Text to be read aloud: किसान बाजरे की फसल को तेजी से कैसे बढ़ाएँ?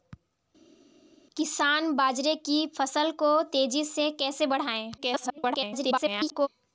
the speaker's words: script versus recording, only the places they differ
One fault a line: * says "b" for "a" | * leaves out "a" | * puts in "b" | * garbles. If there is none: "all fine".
* garbles